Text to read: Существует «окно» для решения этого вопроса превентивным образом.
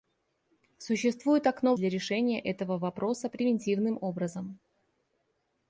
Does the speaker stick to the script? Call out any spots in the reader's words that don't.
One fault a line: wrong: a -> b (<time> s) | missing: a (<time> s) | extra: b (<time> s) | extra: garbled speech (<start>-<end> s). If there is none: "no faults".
no faults